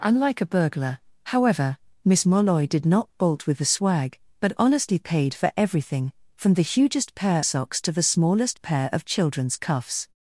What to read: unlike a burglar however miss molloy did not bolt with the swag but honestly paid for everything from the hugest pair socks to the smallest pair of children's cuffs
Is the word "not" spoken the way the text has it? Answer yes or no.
yes